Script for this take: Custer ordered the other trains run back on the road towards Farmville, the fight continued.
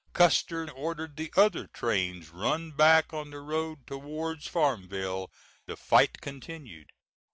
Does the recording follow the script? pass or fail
pass